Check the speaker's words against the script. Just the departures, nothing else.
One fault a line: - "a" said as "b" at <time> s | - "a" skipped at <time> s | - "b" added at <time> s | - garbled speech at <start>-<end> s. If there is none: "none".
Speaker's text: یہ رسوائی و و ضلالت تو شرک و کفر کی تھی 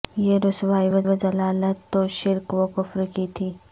none